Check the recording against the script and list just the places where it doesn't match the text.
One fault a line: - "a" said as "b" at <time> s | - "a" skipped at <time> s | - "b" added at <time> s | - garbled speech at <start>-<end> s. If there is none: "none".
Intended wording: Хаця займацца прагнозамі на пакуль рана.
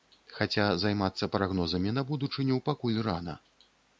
- "будучыню" added at 2.1 s